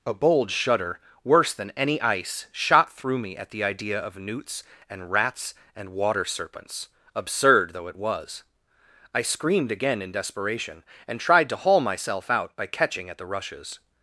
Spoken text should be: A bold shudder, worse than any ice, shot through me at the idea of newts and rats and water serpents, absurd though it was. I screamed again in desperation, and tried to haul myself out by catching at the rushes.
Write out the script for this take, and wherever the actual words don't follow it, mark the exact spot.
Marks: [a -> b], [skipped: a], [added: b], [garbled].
A bold shudder, worse than any ice, shot through me at the idea of newts and rats and water serpents, absurd though it was. I screamed again in desperation, and tried to haul myself out by catching at the rushes.